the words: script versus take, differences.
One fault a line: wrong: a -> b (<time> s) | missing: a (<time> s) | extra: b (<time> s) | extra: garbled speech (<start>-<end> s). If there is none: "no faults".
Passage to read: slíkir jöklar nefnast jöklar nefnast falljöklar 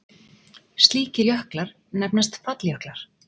missing: jöklar nefnast (2.3 s)